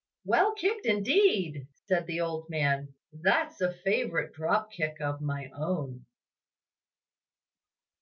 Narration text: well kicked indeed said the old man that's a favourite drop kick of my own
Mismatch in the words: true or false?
false